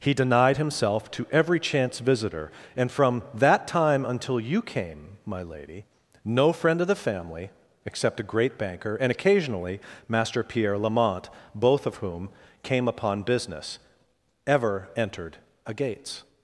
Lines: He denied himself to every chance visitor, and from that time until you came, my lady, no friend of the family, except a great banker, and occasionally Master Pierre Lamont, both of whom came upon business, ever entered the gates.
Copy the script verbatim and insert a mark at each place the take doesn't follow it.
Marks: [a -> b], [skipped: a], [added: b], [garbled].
He denied himself to every chance visitor, and from that time until you came, my lady, no friend of the family, except a great banker, and occasionally Master Pierre Lamont, both of whom came upon business, ever entered [the -> a] gates.